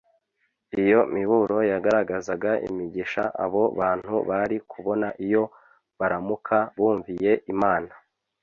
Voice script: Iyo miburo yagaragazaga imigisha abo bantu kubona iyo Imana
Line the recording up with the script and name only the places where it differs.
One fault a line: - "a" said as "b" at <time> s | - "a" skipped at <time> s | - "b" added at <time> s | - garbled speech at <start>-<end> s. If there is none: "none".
- "bari" added at 4.3 s
- "baramuka bumviye" added at 6.0 s